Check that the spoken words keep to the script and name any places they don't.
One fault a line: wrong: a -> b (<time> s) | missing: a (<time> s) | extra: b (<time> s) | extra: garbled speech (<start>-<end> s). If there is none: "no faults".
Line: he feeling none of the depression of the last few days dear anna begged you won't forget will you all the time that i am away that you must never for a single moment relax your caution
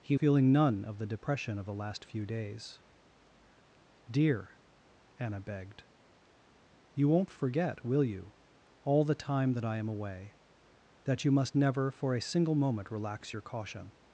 no faults